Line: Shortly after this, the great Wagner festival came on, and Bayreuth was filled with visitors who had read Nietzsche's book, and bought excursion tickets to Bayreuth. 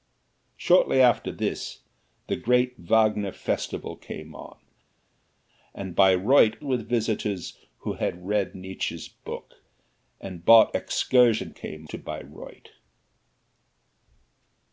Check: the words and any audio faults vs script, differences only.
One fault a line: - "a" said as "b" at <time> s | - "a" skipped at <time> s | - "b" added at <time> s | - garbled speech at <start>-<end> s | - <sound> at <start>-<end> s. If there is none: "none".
- "was filled" skipped at 6.6 s
- "tickets" said as "came" at 11.5 s